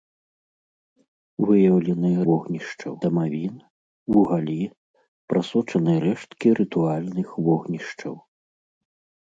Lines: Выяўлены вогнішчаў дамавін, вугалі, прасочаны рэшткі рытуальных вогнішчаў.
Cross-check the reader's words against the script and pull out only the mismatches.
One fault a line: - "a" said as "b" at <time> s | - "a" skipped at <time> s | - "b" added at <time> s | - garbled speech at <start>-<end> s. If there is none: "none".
none